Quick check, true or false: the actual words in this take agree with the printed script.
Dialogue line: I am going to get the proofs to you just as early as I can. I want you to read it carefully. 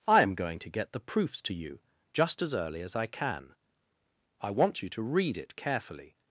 true